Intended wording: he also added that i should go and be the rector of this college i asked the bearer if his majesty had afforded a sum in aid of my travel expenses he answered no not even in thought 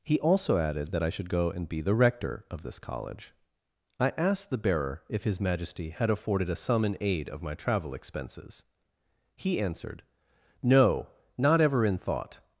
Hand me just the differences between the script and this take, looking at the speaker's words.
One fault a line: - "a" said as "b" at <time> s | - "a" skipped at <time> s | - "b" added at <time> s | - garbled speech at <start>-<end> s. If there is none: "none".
- "even" said as "ever" at 11.6 s